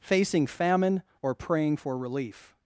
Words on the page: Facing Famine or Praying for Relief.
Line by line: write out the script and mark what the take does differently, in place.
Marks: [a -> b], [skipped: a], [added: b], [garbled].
Facing Famine or Praying for Relief.